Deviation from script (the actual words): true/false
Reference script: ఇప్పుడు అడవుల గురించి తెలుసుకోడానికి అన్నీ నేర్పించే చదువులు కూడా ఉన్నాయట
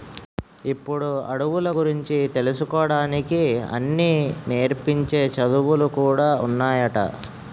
false